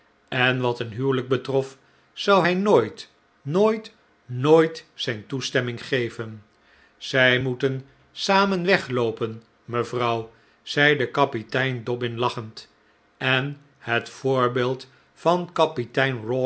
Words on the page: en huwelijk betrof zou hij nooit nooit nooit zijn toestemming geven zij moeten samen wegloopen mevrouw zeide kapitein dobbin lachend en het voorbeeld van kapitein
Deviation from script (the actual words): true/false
true